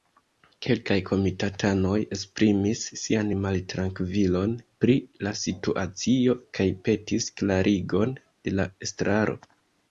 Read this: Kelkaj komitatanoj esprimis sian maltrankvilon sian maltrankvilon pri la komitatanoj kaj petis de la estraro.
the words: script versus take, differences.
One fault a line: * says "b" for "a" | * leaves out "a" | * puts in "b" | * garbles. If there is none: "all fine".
* leaves out "sian maltrankvilon"
* says "situacio" for "komitatanoj"
* puts in "klarigon"